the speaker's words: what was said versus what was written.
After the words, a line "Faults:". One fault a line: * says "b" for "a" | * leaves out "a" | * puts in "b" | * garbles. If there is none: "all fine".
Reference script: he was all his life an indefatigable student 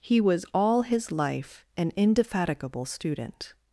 he was all his life an indefatigable student
Faults:
all fine